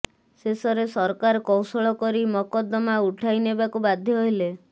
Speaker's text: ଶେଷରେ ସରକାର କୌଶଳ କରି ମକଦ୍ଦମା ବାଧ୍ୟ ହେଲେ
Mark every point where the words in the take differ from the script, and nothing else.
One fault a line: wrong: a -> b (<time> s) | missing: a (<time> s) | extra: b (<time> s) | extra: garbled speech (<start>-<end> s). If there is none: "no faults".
extra: ଉଠାଇ ନେବାକୁ (3.0 s)